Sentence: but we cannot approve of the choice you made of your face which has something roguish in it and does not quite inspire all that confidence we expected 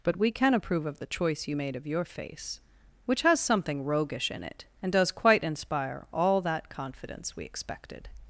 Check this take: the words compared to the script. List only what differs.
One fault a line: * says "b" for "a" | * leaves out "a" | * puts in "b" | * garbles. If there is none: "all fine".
* says "can" for "cannot"
* leaves out "not"